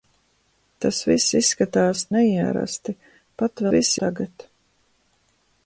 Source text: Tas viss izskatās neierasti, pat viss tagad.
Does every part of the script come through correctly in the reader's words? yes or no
yes